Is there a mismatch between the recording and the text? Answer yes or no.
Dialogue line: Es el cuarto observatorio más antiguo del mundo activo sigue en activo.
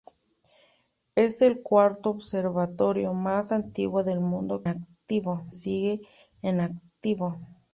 no